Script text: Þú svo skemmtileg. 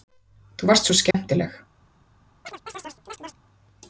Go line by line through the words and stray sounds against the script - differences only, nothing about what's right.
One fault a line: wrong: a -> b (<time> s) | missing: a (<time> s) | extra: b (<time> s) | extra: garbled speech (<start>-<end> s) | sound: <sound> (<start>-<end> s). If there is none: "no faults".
extra: varst (0.7 s)
sound: dropout (1.1-1.1 s)
sound: chirp (2.4-3.4 s)